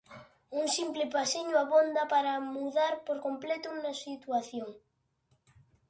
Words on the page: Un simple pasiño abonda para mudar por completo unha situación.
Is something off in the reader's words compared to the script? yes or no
no